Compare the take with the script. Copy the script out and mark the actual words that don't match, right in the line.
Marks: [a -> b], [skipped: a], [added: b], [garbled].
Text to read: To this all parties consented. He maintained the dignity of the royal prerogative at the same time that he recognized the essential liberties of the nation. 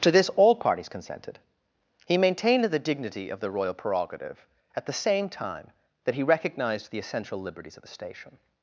To this all parties consented. He maintained the dignity of the royal prerogative at the same time that he recognized the essential liberties of the [nation. -> station]